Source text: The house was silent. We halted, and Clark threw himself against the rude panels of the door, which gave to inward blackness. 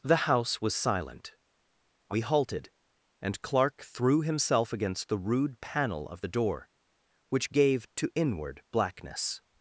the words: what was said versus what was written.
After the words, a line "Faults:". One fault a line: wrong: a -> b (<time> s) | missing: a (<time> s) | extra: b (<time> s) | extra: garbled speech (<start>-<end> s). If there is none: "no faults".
The house was silent. We halted, and Clark threw himself against the rude panel of the door, which gave to inward blackness.
Faults:
wrong: panels -> panel (5.6 s)